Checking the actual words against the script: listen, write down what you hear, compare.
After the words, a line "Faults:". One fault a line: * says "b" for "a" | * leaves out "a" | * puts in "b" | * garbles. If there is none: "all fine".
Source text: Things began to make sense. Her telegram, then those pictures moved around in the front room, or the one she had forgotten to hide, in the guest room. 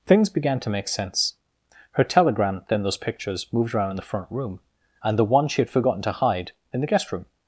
Things began to make sense. Her telegram, then those pictures moved around in the front room, and the one she had forgotten to hide, in the guest room.
Faults:
* says "and" for "or"